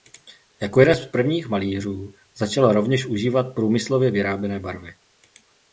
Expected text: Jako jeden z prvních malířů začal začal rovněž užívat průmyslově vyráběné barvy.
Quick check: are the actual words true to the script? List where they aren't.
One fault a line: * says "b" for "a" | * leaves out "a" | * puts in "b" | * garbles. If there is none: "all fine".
* leaves out "začal"